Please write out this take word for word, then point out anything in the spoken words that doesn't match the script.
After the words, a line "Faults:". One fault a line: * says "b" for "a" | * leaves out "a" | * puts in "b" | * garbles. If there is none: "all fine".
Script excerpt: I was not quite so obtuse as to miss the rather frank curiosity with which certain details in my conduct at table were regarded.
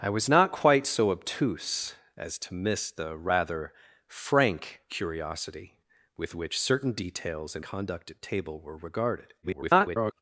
I was not quite so obtuse as to miss the rather frank curiosity with which certain details in conduct at table were regarded. [garbled]
Faults:
* leaves out "my"
* garbles